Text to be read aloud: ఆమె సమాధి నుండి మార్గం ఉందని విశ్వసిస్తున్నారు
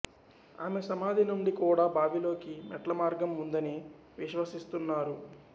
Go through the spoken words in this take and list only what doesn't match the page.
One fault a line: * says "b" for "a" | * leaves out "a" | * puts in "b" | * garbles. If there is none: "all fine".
* puts in "కూడా బావిలోకి మెట్ల"